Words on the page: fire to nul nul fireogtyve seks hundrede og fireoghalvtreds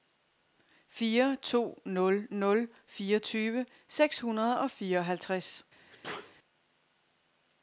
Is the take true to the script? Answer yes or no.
yes